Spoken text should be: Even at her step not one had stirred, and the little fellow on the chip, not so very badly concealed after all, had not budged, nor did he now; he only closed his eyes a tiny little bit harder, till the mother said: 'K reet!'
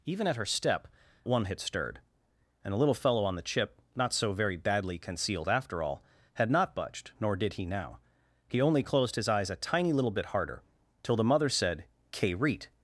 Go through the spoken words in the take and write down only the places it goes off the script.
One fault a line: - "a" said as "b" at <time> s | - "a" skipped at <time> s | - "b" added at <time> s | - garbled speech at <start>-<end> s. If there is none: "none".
- "not" skipped at 0.9 s